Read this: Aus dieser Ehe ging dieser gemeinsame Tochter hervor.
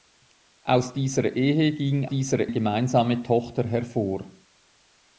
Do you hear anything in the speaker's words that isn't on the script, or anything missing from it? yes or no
no